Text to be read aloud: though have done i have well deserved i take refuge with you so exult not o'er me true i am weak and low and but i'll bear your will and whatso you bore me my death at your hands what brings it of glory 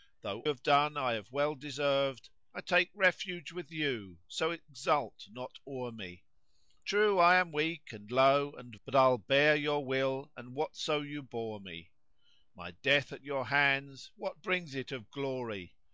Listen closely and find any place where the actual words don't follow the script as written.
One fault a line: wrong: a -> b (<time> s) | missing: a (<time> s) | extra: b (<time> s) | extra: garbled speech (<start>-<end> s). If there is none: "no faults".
no faults